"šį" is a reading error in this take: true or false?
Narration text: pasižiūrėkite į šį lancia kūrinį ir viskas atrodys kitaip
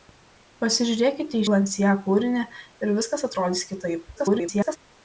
true